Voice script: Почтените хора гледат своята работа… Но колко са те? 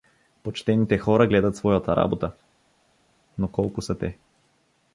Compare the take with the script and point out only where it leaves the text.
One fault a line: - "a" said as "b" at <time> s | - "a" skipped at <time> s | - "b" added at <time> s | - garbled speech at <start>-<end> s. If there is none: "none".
none